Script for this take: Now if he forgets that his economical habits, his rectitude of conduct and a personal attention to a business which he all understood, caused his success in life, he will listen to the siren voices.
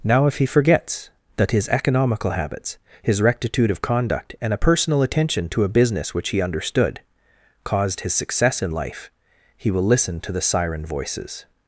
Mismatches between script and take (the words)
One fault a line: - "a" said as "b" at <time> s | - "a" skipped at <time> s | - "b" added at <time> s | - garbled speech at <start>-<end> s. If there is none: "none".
- "all" skipped at 6.4 s